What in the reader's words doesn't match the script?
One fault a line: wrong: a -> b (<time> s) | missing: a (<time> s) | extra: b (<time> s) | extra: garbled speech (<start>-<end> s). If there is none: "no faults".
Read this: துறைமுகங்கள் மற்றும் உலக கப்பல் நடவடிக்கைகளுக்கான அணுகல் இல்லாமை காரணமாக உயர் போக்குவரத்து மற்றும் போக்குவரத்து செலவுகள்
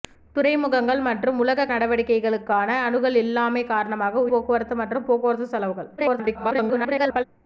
missing: கப்பல் (1.6 s)
missing: உயர் (4.2 s)
extra: garbled speech (6.0-7.2 s)